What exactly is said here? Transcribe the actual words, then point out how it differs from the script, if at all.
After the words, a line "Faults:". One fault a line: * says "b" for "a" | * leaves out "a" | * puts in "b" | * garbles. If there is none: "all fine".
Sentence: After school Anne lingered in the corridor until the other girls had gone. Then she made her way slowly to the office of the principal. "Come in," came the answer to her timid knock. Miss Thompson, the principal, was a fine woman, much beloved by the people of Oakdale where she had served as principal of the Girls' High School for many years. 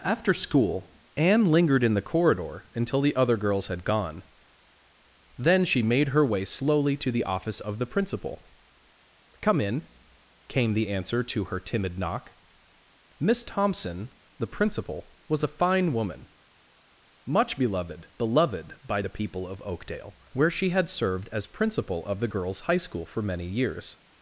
After school Anne lingered in the corridor until the other girls had gone. Then she made her way slowly to the office of the principal. "Come in," came the answer to her timid knock. Miss Thompson, the principal, was a fine woman, much beloved beloved by the people of Oakdale where she had served as principal of the Girls' High School for many years.
Faults:
* puts in "beloved"